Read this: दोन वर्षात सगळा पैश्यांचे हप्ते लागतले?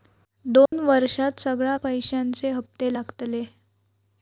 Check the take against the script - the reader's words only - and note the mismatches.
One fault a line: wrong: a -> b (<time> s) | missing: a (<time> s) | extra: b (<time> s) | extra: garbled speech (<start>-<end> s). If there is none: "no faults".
no faults